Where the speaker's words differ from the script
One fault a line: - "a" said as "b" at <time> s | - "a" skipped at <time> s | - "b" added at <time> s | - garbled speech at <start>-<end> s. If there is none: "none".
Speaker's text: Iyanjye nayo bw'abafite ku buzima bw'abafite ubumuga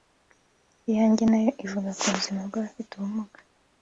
- "bw'abafite" said as "ivuga" at 1.6 s